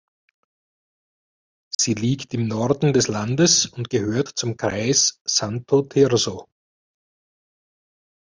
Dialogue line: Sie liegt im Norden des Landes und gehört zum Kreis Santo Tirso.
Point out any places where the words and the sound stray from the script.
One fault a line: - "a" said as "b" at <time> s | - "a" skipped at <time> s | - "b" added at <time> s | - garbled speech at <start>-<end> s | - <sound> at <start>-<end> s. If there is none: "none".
- dropout at 1.7-1.8 s